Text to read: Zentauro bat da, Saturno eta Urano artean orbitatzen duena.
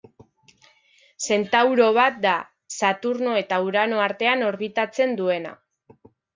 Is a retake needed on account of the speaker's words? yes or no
no